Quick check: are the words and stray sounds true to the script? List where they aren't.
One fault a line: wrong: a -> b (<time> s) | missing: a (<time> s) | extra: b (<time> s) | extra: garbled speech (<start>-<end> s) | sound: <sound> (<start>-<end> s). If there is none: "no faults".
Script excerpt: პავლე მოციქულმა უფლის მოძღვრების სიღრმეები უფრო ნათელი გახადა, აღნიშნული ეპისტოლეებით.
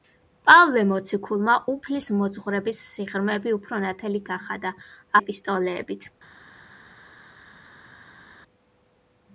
missing: აღნიშნული (4.7 s)